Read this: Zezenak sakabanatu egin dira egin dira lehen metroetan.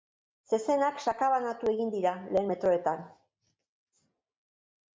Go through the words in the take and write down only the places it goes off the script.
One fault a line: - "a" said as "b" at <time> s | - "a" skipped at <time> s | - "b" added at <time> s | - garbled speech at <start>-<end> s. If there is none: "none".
- "egin dira" skipped at 2.1 s